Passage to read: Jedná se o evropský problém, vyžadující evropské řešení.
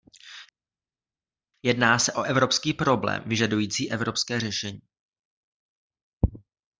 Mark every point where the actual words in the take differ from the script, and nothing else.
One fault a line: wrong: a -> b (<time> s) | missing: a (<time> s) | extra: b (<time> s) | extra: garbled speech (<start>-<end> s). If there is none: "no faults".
no faults